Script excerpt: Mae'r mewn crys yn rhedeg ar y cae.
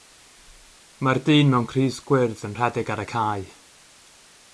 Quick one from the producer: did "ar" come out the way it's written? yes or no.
yes